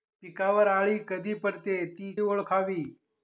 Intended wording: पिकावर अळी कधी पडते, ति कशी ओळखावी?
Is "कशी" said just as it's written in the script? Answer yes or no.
no